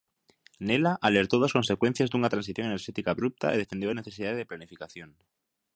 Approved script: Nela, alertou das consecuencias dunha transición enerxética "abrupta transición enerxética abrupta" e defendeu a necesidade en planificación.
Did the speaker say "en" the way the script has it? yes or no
no